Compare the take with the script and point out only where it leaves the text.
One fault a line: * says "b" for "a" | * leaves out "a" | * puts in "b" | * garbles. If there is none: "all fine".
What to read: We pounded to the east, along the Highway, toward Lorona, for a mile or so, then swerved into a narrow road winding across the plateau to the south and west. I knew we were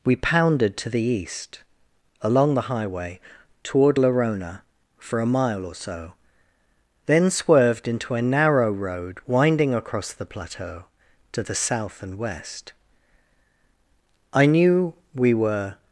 all fine